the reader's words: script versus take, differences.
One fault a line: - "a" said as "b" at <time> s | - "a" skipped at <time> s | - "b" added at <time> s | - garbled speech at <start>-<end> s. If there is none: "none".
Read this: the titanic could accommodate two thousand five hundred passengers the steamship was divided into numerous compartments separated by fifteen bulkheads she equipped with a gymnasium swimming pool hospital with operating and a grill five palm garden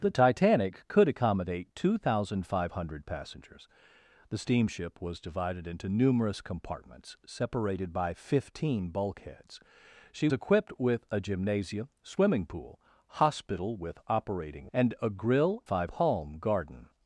none